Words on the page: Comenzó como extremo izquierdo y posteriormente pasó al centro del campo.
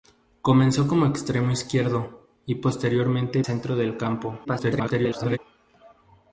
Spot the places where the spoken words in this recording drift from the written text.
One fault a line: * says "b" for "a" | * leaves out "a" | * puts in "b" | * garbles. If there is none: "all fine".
* leaves out "pasó al"
* garbles